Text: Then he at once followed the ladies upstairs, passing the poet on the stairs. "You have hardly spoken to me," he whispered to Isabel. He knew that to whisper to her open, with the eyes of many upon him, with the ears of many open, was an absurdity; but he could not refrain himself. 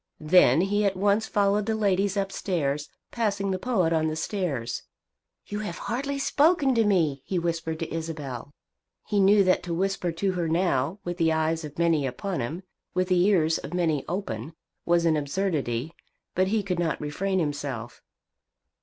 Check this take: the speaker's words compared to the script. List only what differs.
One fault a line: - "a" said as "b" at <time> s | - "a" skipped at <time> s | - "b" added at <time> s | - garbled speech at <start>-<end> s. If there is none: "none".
- "open" said as "now" at 10.5 s